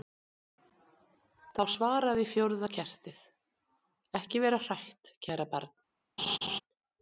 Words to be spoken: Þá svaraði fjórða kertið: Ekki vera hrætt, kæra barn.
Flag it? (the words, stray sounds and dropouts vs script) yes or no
yes